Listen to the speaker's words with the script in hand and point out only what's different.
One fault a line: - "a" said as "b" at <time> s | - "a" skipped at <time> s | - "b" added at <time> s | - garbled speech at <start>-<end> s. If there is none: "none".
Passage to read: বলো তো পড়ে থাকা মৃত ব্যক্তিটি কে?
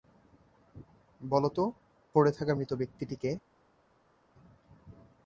none